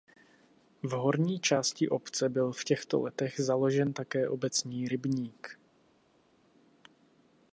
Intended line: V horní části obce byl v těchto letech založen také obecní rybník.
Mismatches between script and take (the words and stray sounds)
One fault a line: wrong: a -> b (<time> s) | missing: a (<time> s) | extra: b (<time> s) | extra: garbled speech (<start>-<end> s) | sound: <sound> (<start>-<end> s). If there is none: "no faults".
no faults